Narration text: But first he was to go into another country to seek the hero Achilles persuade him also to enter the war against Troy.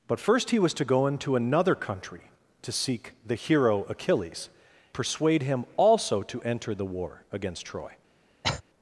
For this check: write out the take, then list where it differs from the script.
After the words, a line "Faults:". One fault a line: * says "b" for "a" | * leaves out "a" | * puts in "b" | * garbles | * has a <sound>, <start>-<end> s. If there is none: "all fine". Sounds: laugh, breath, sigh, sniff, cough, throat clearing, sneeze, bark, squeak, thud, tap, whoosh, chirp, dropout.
But first he was to go into another country to seek the hero Achilles persuade him also to enter the war against Troy.
Faults:
* has a cough, 8.4-8.6 s